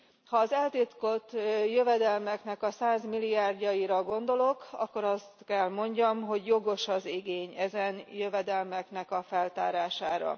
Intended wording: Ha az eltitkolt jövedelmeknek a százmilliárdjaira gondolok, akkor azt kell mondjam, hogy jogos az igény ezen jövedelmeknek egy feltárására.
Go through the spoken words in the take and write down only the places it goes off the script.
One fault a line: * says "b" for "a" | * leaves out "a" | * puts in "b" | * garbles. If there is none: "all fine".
* says "a" for "egy"